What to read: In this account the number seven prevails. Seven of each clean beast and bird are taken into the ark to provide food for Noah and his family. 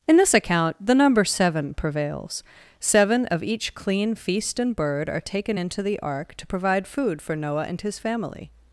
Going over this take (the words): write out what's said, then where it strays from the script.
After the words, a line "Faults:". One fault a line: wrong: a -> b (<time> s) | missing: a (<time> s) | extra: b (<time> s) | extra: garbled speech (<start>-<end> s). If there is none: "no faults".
In this account the number seven prevails. Seven of each clean feast and bird are taken into the ark to provide food for Noah and his family.
Faults:
wrong: beast -> feast (4.2 s)